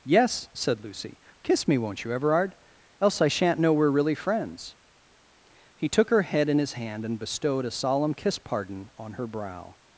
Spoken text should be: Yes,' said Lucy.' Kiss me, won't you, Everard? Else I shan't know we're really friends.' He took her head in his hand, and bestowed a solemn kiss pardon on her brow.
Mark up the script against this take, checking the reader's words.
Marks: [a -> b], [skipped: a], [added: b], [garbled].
Yes,' said Lucy.' Kiss me, won't you, Everard? Else I shan't know we're really friends.' He took her head in his hand, and bestowed a solemn kiss pardon on her brow.